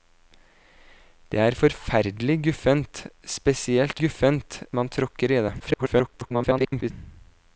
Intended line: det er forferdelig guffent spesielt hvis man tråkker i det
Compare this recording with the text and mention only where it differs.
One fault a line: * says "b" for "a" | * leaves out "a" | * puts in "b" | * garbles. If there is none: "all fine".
* says "guffent" for "hvis"
* garbles